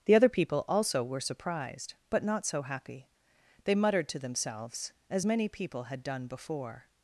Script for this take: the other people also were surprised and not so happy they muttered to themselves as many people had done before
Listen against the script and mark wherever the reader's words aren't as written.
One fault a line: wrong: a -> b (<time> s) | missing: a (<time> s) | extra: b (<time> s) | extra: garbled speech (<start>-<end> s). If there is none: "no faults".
wrong: and -> but (2.1 s)